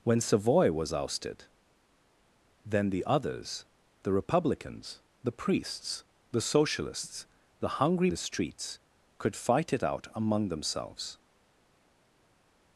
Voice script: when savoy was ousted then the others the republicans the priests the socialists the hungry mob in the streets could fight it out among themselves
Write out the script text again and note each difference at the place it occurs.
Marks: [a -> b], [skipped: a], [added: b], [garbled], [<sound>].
when savoy was ousted then the others the republicans the priests the socialists the hungry [skipped: mob in] the streets could fight it out among themselves